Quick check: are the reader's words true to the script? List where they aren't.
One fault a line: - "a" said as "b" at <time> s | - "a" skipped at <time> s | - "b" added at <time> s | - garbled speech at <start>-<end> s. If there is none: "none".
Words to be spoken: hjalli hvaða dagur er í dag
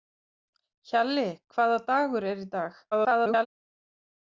- garbled speech at 2.9-3.5 s